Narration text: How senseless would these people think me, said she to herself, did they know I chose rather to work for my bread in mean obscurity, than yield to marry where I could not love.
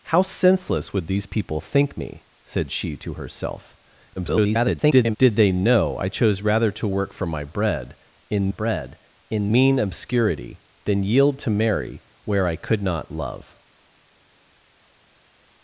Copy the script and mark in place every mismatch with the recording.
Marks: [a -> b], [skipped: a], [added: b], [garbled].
How senseless would these people think me, said she to herself, [garbled] did they know I chose rather to work for my bread in [added: bread in] mean obscurity, than yield to marry where I could not love.